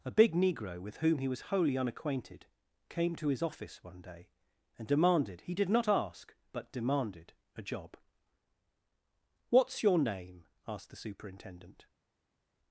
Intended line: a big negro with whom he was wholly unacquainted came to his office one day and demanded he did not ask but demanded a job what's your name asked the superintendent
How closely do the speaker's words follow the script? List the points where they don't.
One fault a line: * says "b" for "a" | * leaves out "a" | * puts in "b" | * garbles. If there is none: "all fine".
all fine